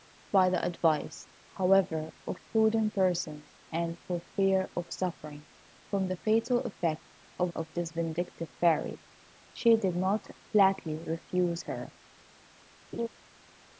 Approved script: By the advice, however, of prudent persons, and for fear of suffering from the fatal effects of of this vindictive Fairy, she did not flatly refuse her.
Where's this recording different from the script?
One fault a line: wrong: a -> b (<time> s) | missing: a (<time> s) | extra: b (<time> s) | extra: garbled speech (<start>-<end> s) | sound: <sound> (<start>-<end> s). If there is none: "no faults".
sound: laugh (12.9-13.1 s)